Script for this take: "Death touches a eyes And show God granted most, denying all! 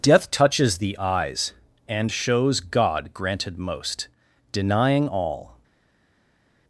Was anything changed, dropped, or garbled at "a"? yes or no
yes